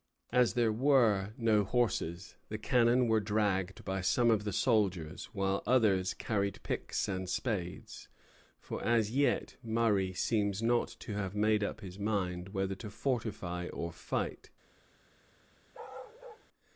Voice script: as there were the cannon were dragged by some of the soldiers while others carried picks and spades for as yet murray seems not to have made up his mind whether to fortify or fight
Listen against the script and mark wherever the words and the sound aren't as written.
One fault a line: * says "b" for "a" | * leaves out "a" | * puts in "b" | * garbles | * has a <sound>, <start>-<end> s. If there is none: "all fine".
* puts in "no horses"
* has a bark, 15.7-16.5 s